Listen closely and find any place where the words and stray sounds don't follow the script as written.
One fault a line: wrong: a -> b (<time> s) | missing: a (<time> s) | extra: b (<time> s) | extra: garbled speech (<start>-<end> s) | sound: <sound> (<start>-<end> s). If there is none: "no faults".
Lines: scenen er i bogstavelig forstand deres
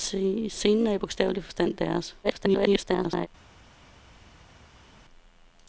extra: garbled speech (2.2-3.3 s)